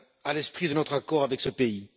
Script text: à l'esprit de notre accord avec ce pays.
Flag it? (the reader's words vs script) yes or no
no